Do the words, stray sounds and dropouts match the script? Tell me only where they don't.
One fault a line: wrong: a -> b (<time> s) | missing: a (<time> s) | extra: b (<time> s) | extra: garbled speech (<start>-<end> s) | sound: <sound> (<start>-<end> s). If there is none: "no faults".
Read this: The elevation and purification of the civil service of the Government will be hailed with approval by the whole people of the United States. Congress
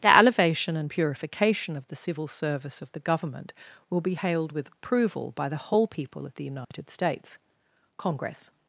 sound: dropout (6.6-6.7 s)